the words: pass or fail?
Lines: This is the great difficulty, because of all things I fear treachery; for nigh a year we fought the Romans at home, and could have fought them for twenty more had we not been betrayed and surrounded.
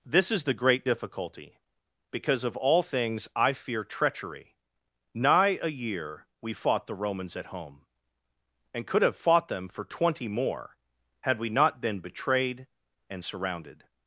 fail